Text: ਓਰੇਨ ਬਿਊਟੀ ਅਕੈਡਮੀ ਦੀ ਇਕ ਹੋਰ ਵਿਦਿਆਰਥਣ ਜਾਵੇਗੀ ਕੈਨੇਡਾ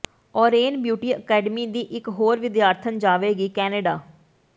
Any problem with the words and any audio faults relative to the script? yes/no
no